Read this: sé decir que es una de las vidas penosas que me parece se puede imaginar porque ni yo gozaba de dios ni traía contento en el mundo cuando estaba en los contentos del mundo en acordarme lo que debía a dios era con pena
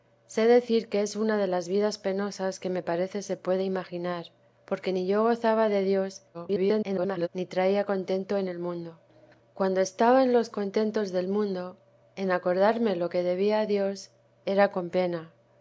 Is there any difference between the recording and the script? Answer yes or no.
yes